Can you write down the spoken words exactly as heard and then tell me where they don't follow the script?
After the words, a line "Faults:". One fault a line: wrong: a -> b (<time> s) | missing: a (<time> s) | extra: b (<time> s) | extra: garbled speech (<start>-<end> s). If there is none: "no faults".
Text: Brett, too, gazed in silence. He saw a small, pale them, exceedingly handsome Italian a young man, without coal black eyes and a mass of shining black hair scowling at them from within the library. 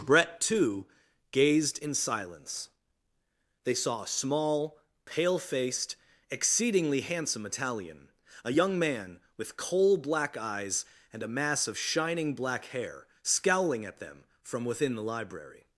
Brett, too, gazed in silence. They saw a small, pale faced, exceedingly handsome Italian a young man, with coal black eyes and a mass of shining black hair scowling at them from within the library.
Faults:
wrong: He -> They (3.6 s)
wrong: them -> faced (5.4 s)
wrong: without -> with (9.4 s)